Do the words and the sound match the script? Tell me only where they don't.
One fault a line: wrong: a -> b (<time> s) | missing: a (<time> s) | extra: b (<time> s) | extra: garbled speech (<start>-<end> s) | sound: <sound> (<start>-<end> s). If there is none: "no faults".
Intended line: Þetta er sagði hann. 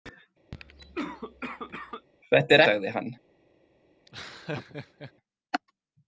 sound: cough (0.5-2.1 s)
sound: laugh (4.1-5.1 s)